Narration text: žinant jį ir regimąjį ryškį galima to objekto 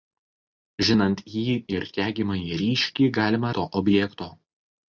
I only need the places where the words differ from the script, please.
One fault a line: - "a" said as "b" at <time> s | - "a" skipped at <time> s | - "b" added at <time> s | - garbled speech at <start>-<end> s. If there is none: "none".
none